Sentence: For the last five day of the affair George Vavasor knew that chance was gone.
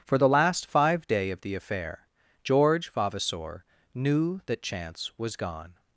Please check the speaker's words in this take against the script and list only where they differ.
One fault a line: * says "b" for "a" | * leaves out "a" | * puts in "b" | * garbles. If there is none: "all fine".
all fine